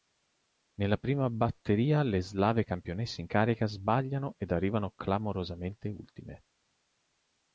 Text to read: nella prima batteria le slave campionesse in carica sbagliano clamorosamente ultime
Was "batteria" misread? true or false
false